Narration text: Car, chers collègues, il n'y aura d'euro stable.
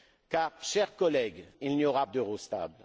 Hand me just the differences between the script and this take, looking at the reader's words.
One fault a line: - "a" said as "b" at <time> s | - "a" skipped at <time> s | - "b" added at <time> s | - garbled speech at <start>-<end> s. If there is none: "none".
none